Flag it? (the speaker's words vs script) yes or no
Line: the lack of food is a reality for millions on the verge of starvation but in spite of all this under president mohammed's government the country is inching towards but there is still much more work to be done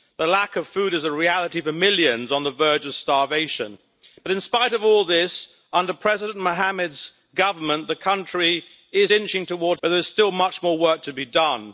no